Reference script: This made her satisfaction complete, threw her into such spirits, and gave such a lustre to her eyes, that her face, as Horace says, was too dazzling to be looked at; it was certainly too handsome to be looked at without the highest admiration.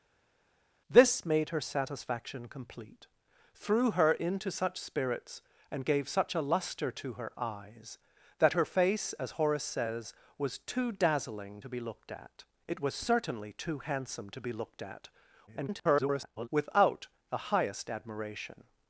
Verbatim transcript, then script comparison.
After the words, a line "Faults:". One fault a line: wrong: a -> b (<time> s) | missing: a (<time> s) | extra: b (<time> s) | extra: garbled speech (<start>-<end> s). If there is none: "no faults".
This made her satisfaction complete, threw her into such spirits, and gave such a lustre to her eyes, that her face, as Horace says, was too dazzling to be looked at; it was certainly too handsome to be looked at [garbled] without the highest admiration.
Faults:
extra: garbled speech (15.5-16.5 s)